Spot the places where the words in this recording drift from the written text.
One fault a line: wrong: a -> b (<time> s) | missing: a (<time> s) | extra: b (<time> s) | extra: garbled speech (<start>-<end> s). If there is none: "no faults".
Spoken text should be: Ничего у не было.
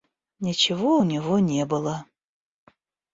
extra: него (1.0 s)